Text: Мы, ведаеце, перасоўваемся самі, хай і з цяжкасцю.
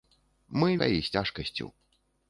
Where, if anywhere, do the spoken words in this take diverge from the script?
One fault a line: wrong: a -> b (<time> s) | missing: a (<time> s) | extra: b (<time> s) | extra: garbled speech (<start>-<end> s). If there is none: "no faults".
missing: ведаеце перасоўваемся самі (0.7 s)